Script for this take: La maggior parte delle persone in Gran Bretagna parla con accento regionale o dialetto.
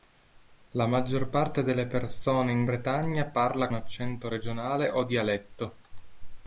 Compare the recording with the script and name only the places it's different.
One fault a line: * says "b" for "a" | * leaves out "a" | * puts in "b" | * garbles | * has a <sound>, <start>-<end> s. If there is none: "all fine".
* leaves out "Gran"
* leaves out "con"